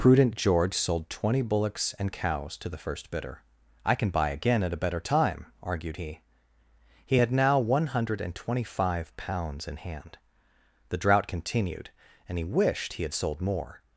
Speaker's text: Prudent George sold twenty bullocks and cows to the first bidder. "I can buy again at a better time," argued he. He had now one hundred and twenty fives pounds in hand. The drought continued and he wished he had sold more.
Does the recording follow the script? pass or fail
fail